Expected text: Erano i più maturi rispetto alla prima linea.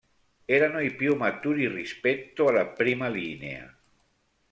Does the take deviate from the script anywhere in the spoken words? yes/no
no